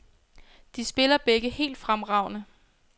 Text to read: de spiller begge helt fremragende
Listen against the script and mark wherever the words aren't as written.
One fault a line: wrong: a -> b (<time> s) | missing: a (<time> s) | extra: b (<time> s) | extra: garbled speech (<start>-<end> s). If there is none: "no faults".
no faults